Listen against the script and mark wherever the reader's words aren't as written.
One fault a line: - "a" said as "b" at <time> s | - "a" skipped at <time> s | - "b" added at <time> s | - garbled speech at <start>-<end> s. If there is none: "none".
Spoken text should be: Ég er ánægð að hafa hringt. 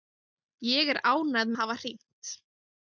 none